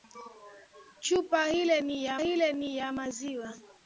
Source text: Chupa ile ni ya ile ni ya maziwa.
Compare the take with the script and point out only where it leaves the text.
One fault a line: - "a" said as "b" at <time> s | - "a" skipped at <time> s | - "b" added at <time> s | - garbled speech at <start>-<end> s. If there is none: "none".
none